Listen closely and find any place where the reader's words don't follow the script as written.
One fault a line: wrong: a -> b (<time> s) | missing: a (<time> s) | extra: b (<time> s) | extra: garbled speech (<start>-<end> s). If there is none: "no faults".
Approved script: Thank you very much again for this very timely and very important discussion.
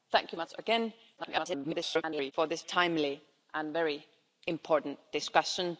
missing: very (0.4 s)
extra: garbled speech (1.2-2.3 s)
missing: very (2.6 s)